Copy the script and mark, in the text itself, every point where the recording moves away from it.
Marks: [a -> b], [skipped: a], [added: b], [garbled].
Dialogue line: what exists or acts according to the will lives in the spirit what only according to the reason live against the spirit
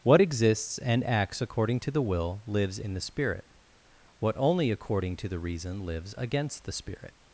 what exists [or -> and] acts according to the will lives in the spirit what only according to the reason [live -> lives] against the spirit